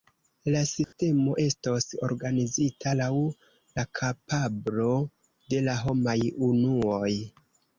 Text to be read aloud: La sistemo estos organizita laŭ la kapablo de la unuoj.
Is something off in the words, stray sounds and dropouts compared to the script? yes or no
yes